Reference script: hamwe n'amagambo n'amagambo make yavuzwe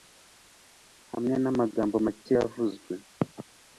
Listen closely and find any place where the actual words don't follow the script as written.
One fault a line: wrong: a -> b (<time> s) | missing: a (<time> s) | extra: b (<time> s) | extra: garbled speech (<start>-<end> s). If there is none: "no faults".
missing: n'amagambo (1.9 s)